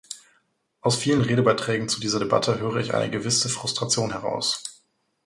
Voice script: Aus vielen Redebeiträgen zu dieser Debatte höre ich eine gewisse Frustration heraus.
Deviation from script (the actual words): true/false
false